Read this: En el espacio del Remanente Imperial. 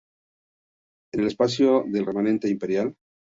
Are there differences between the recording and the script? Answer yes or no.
no